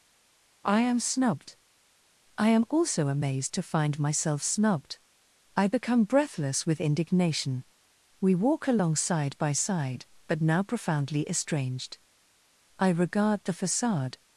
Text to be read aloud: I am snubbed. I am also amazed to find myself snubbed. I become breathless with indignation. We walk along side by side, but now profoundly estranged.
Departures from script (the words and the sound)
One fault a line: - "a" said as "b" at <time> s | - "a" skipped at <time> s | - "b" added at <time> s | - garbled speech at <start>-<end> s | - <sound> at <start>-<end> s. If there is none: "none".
- "I regard the facade" added at 12.8 s